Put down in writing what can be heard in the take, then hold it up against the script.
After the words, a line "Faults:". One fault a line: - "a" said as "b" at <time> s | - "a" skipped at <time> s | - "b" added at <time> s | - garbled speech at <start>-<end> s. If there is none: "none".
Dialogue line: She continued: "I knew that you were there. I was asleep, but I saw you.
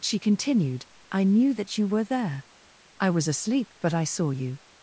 She continued: "I knew that you were there. I was asleep, but I saw you.
Faults:
none